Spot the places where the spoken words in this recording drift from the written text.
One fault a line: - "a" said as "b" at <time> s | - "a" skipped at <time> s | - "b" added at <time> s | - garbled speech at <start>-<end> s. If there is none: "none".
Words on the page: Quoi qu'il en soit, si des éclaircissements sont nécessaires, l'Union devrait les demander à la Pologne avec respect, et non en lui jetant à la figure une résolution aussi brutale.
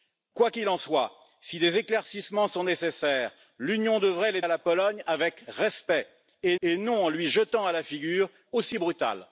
- "demander" skipped at 4.4 s
- "et" added at 6.6 s
- "une résolution" skipped at 8.3 s